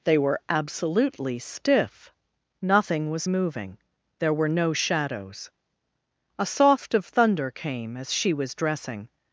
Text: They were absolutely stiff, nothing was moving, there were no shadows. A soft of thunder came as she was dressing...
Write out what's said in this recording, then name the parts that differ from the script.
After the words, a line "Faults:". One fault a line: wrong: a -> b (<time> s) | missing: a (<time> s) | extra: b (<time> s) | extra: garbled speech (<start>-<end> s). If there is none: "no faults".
They were absolutely stiff, nothing was moving, there were no shadows. A soft of thunder came as she was dressing...
Faults:
no faults